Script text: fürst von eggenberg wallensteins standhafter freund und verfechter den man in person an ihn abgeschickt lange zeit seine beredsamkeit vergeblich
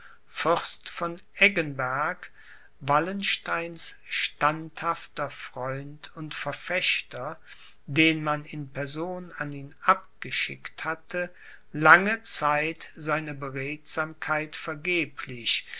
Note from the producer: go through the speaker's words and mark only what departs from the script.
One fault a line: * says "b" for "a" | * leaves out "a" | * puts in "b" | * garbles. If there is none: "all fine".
* puts in "hatte"